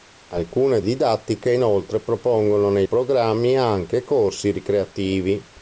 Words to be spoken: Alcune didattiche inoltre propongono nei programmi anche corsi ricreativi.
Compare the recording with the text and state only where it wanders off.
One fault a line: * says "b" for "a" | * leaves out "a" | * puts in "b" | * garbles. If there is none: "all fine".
all fine